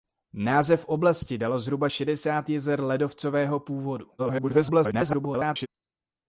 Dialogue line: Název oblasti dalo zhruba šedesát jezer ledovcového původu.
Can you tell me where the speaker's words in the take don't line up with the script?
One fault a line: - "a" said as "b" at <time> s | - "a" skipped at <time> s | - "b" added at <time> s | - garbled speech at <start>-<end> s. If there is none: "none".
- garbled speech at 4.2-5.7 s